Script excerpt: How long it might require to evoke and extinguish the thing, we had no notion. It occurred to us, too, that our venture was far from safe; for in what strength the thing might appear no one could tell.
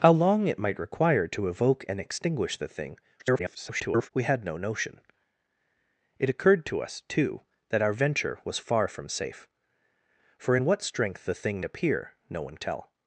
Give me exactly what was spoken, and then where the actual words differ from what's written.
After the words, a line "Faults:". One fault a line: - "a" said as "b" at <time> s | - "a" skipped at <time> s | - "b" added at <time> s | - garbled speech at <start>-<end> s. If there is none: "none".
How long it might require to evoke and extinguish the thing, [garbled] we had no notion. It occurred to us, too, that our venture was far from safe; for in what strength the thing appear no one tell.
Faults:
- garbled speech at 3.2-4.1 s
- "might" skipped at 11.6 s
- "could" skipped at 12.6 s